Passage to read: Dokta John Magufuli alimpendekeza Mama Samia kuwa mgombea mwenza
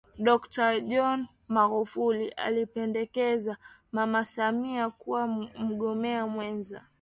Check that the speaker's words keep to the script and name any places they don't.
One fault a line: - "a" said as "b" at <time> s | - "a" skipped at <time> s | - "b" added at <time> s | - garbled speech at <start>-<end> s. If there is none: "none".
none